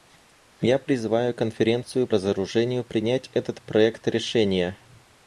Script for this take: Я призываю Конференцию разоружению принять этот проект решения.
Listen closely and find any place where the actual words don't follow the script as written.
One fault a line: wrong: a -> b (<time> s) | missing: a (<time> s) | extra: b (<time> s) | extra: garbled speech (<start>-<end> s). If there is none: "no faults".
no faults